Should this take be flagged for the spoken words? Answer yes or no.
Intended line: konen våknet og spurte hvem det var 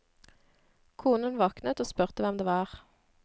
no